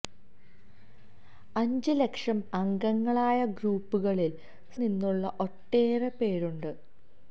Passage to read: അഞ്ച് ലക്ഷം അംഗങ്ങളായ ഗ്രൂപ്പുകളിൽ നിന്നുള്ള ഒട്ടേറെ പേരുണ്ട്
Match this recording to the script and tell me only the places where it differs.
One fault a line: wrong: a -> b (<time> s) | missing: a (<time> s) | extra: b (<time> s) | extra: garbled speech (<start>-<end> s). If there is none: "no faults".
no faults